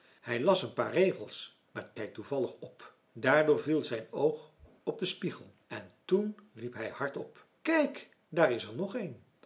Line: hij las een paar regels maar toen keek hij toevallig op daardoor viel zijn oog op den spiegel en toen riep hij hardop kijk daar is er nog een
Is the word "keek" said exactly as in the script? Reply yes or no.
no